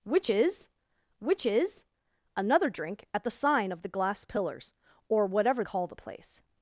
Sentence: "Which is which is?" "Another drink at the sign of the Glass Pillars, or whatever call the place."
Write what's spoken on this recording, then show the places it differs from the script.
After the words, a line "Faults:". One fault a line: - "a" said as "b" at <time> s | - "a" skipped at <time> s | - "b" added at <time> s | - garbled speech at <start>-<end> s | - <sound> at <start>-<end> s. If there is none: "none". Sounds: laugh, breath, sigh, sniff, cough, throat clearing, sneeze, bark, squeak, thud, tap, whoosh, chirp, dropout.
"Which is which is?" "Another drink at the sign of the Glass Pillars, or whatever call the place."
Faults:
none